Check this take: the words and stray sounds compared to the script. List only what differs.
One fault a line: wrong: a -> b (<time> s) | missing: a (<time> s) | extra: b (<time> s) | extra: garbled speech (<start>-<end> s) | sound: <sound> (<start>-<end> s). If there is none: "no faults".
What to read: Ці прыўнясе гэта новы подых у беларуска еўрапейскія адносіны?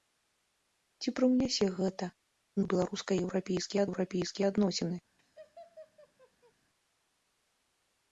missing: новы подых (2.1 s)
extra: еўрапейскія (3.9 s)
sound: laugh (5.2-6.5 s)